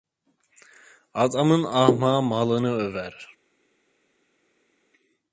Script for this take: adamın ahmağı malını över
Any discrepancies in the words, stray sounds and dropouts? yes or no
no